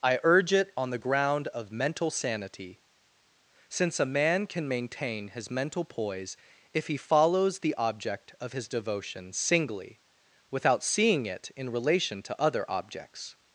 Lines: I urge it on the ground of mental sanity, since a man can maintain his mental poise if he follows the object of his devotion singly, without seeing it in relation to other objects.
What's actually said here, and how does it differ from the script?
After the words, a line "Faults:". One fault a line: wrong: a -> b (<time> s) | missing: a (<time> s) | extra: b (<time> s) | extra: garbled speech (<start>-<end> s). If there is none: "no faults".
I urge it on the ground of mental sanity, since a man can maintain his mental poise if he follows the object of his devotion singly, without seeing it in relation to other objects.
Faults:
no faults